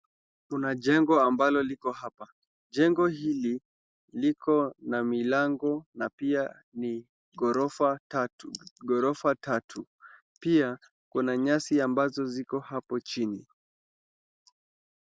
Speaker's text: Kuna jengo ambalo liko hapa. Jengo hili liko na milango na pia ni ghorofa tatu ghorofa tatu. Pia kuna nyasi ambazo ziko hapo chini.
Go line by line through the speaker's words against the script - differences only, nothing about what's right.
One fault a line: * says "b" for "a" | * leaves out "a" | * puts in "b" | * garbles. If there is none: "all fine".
all fine